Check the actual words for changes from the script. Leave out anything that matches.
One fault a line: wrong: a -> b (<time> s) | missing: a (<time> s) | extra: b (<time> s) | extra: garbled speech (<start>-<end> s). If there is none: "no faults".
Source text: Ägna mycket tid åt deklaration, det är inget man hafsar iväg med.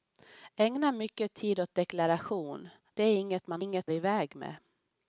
wrong: hafsar -> inget (3.6 s)